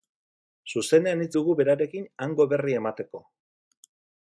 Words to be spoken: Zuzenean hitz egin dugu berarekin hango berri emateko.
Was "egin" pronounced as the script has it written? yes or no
no